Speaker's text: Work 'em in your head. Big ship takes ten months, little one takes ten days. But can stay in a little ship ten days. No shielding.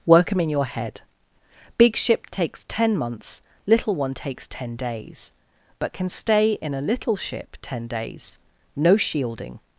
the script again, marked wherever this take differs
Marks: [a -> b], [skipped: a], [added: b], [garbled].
Work 'em in your head. Big ship takes ten months, little one takes ten days. But can stay in a little ship ten days. No shielding.